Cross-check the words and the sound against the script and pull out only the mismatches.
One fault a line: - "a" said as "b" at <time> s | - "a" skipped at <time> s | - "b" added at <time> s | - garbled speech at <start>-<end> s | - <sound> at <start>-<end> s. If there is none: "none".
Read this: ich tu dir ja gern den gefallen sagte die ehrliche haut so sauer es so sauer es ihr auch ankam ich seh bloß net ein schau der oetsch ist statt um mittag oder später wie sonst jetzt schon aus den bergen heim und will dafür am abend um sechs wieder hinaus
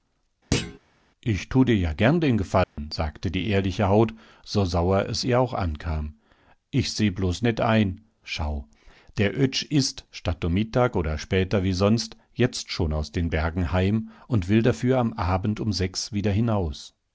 - thud at 0.5-0.8 s
- dropout at 2.6-2.8 s
- "so sauer es" skipped at 5.2 s